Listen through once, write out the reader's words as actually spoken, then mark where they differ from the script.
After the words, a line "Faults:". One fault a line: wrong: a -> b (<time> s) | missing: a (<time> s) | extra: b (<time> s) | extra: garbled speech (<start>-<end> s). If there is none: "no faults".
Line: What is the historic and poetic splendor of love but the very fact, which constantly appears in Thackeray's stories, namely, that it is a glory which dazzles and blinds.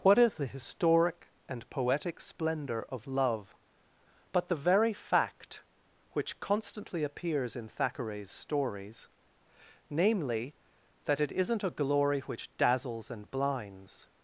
What is the historic and poetic splendor of love but the very fact, which constantly appears in Thackeray's stories, namely, that it isn't a glory which dazzles and blinds.
Faults:
wrong: is -> isn't (11.3 s)